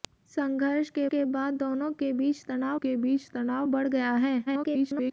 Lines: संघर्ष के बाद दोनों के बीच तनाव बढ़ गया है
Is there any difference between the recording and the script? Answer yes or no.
yes